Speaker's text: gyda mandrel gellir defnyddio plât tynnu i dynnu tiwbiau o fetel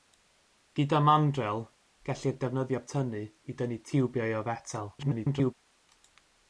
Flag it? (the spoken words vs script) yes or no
yes